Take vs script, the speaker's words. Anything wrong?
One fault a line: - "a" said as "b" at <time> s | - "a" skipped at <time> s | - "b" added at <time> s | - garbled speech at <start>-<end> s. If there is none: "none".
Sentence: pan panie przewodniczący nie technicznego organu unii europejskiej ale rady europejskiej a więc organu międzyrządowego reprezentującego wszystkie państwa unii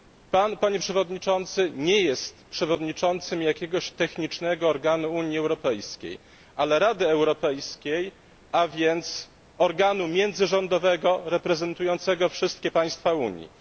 - "jest przewodniczącym jakiegoś" added at 2.0 s